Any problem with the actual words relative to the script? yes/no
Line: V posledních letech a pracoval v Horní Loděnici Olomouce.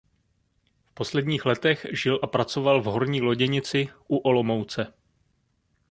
yes